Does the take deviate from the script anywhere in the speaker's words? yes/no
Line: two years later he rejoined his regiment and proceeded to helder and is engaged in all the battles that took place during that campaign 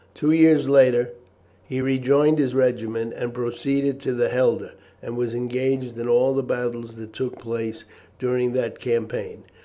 yes